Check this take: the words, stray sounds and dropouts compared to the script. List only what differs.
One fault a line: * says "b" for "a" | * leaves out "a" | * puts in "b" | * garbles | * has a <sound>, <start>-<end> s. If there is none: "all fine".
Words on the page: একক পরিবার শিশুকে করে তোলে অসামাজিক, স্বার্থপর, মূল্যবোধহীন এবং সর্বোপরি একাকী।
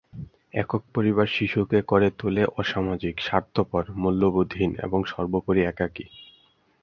all fine